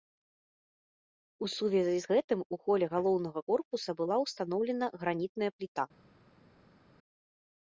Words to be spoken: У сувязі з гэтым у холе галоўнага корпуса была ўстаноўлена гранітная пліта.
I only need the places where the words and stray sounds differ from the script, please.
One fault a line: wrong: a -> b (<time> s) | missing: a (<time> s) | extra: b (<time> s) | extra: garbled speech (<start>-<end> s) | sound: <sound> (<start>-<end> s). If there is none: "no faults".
no faults